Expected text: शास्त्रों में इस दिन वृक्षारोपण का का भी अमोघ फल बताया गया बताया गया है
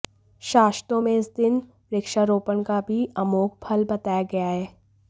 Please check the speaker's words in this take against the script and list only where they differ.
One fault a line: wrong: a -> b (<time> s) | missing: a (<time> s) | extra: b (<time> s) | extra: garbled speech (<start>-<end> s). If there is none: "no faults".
missing: का (2.8 s)
missing: बताया गया (4.5 s)